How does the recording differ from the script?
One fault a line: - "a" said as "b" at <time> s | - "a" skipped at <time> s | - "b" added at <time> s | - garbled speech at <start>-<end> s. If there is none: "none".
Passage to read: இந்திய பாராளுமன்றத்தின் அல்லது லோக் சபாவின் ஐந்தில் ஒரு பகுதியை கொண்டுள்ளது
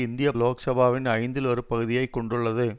- "பாராளுமன்றத்தின் அல்லது" skipped at 0.3 s